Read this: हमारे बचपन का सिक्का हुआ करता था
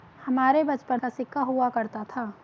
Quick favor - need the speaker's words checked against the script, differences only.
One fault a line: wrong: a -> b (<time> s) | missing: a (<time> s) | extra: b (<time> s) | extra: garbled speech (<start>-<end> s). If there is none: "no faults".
no faults